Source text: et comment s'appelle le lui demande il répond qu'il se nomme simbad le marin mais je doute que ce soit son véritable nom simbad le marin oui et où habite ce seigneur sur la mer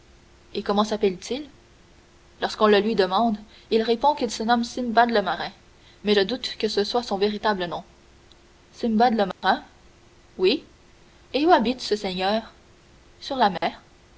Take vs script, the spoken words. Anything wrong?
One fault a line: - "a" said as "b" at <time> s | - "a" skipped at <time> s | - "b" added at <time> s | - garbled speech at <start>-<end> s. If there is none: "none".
- "t il lorsqu'on" added at 1.2 s